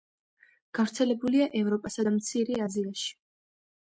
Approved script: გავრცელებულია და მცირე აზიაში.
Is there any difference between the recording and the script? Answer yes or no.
yes